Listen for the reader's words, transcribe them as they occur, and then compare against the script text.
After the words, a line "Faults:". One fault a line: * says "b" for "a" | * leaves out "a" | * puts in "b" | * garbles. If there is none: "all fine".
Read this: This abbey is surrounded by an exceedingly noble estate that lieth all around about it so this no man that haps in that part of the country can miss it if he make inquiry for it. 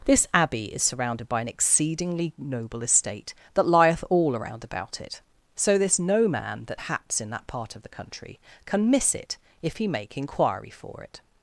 This abbey is surrounded by an exceedingly noble estate that lieth all around about it so this no man that haps in that part of the country can miss it if he make inquiry for it.
Faults:
all fine